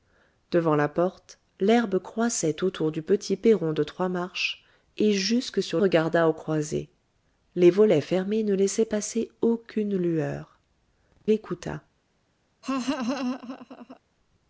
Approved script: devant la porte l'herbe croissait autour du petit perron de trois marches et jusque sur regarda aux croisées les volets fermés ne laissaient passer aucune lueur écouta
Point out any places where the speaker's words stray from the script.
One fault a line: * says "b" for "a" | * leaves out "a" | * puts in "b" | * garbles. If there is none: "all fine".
all fine